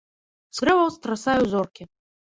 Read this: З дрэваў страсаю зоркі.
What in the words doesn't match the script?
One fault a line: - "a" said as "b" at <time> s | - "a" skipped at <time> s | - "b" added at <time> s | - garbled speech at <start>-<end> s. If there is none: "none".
none